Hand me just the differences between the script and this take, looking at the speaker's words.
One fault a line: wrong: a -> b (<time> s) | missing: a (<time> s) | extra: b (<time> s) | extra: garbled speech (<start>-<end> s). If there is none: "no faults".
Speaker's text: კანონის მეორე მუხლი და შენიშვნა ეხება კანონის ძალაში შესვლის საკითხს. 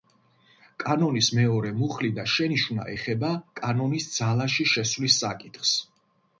no faults